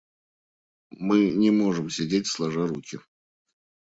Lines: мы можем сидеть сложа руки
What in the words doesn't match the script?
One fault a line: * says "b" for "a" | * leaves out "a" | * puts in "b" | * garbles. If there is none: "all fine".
* puts in "не"